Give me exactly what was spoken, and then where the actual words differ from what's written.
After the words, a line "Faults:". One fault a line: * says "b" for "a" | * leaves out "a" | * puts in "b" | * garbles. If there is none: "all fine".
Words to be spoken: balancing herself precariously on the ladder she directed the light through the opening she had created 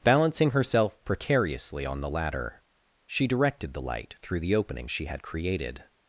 balancing herself precariously on the ladder she directed the light through the opening she had created
Faults:
all fine